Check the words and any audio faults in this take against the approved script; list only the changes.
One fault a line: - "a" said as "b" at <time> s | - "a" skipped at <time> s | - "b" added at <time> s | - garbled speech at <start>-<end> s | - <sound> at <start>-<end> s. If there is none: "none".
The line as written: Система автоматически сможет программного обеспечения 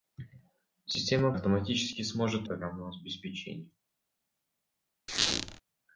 - squeak at 5.1-5.6 s